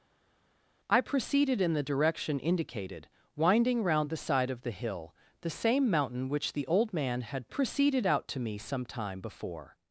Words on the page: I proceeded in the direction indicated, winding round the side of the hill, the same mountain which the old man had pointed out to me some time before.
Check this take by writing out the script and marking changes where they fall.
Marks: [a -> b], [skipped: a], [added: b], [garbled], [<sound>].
I proceeded in the direction indicated, winding round the side of the hill, the same mountain which the old man had [pointed -> proceeded] out to me some time before.